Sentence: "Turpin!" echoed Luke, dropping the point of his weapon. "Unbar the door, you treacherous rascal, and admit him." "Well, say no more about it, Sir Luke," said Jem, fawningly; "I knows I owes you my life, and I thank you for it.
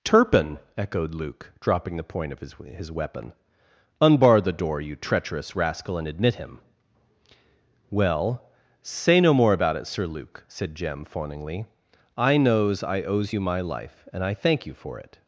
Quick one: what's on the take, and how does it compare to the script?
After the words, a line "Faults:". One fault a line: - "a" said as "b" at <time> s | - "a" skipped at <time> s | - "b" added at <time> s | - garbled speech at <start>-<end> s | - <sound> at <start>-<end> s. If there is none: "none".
"Turpin!" echoed Luke, dropping the point of his his weapon. "Unbar the door, you treacherous rascal, and admit him." "Well, say no more about it, Sir Luke," said Jem, fawningly; "I knows I owes you my life, and I thank you for it.
Faults:
- "his" added at 2.5 s